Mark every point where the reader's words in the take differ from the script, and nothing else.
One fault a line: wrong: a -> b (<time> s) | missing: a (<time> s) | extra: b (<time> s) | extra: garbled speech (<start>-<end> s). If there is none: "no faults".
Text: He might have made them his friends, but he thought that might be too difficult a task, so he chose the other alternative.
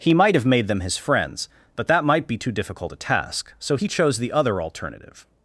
missing: he thought (1.9 s)